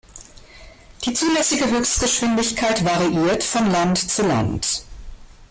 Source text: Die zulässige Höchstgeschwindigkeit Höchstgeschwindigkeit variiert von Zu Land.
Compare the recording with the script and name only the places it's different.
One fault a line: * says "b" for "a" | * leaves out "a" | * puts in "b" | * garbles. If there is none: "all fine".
* leaves out "Höchstgeschwindigkeit"
* puts in "Land"